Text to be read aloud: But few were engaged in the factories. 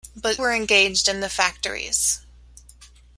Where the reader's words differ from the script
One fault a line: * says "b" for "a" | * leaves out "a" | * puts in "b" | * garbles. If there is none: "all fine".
* leaves out "few"